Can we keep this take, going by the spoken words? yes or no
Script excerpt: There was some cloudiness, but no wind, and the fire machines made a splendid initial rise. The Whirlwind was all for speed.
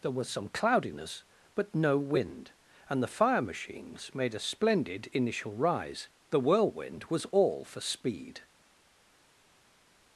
yes